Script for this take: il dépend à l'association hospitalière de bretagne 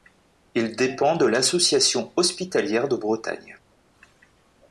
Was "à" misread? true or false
true